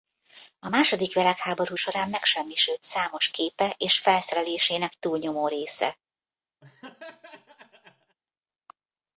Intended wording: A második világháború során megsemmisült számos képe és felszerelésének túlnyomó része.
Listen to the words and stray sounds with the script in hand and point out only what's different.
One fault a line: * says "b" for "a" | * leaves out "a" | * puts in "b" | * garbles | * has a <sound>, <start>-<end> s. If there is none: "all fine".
* has a laugh, 6.6-8.2 s